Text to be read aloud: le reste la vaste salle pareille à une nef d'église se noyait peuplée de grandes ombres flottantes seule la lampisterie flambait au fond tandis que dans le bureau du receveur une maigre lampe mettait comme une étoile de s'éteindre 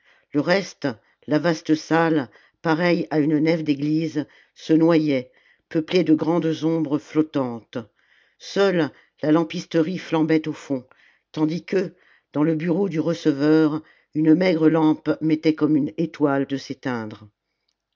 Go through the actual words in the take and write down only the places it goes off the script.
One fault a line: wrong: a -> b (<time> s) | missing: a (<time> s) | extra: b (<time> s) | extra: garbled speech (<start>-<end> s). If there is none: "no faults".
no faults